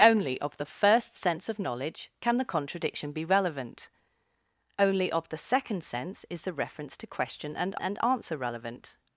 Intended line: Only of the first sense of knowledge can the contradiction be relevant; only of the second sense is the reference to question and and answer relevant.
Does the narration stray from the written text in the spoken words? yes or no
no